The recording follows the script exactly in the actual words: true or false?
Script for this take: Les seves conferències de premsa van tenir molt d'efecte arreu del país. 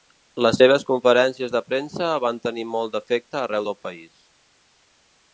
true